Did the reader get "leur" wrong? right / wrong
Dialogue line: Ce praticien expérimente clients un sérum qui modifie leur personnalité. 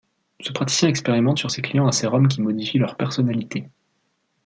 right